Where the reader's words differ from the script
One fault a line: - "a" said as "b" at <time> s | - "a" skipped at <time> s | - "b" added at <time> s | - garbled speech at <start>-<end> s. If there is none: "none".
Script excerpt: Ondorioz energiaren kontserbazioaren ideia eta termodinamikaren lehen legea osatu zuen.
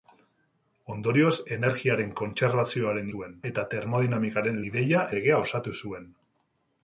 - "ideia" said as "zuen" at 3.1 s
- "lehen" said as "ideia" at 4.7 s